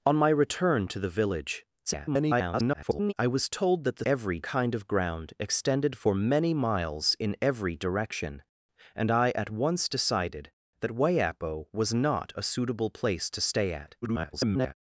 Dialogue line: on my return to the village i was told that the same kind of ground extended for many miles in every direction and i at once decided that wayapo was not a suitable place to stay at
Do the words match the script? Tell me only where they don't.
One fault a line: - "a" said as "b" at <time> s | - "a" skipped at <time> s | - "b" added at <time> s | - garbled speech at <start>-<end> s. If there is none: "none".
- garbled speech at 1.9-3.1 s
- "same" said as "every" at 4.0 s
- garbled speech at 14.0-14.7 s